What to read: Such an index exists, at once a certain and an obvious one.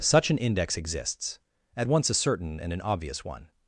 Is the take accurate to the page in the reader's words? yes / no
yes